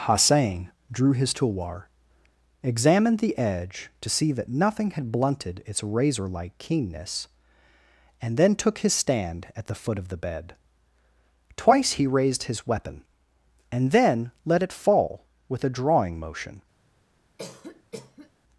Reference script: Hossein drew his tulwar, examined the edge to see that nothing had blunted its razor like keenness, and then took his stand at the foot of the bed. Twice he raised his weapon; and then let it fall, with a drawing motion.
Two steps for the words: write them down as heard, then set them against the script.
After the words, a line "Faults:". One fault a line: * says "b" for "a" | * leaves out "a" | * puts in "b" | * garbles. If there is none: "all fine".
Hossein drew his tulwar, examined the edge to see that nothing had blunted its razor like keenness, and then took his stand at the foot of the bed. Twice he raised his weapon; and then let it fall, with a drawing motion.
Faults:
all fine